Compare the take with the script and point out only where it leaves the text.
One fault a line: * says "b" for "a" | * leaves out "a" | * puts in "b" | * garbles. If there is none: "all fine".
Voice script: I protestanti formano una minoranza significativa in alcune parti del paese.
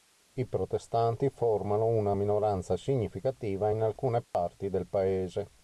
all fine